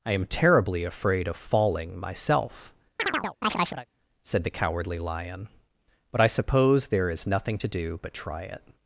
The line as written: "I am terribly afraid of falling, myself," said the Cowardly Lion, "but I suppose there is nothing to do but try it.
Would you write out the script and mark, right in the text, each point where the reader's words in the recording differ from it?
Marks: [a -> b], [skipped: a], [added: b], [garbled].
"I am terribly afraid of falling, myself," said the Cowardly Lion, "but I suppose there is nothing to do but try it.